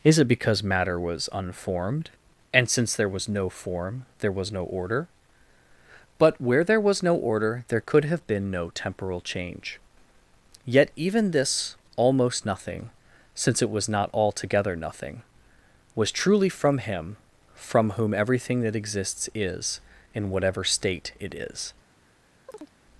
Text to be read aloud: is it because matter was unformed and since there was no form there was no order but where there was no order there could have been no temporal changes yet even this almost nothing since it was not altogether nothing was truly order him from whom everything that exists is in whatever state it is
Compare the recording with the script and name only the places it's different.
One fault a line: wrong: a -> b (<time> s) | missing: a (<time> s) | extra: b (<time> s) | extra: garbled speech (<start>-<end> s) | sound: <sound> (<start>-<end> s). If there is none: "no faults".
wrong: changes -> change (9.2 s)
wrong: order -> from (16.5 s)
sound: chirp (22.5-22.7 s)